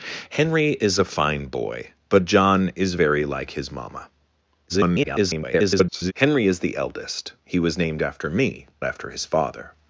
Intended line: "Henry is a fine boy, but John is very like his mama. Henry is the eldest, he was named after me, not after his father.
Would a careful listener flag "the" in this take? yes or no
no